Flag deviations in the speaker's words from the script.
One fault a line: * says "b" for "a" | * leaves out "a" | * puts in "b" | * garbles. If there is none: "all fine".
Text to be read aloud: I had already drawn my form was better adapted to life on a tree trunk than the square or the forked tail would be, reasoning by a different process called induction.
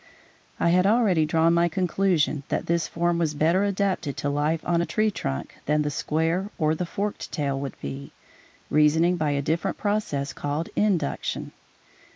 * puts in "conclusion that this"